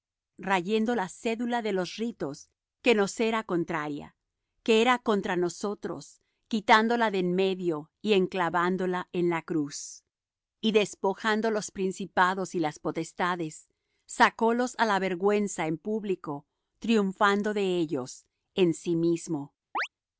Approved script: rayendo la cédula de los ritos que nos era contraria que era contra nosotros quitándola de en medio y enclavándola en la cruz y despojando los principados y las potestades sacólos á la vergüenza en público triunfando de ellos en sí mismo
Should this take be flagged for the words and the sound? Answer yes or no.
yes